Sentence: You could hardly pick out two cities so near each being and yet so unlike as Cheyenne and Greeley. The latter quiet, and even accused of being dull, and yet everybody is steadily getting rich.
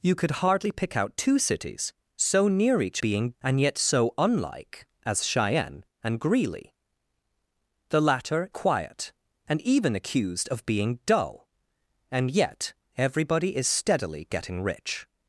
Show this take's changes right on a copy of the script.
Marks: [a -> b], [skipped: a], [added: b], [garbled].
You could hardly pick out two cities so near each being and yet so unlike as Cheyenne and Greeley. The latter quiet, and even accused of being dull, and yet everybody is steadily getting rich.